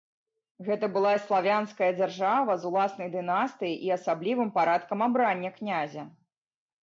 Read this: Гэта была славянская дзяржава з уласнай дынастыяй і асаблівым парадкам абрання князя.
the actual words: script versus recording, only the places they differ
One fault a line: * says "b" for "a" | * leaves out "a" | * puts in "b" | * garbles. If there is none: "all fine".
all fine